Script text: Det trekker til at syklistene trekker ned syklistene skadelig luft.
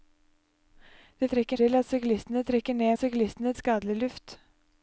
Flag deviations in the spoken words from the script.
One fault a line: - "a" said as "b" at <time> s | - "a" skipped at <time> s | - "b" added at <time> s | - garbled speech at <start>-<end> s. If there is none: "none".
none